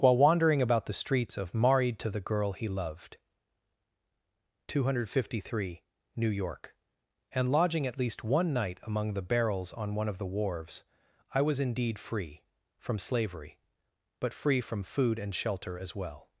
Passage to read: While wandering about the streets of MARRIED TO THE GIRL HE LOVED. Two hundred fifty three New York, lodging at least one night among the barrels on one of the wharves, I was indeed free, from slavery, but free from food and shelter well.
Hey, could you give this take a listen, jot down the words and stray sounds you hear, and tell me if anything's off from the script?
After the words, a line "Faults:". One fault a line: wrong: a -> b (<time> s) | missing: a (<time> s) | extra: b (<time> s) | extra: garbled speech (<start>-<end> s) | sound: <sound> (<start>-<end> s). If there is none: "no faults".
While wandering about the streets of MARRIED TO THE GIRL HE LOVED. Two hundred fifty three New York, and lodging at least one night among the barrels on one of the wharves, I was indeed free, from slavery, but free from food and shelter as well.
Faults:
extra: and (7.3 s)
extra: as (15.8 s)